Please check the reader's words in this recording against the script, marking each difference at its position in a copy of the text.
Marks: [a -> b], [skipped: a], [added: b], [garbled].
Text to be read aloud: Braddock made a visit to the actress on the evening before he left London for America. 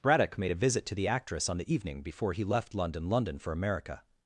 Braddock made a visit to the actress on the evening before he left London [added: London] for America.